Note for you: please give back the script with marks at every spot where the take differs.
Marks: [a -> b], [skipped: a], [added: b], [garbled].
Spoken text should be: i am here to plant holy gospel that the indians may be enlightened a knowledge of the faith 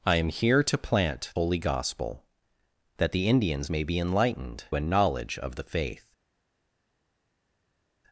i am here to plant holy gospel that the indians may be enlightened a knowledge of the faith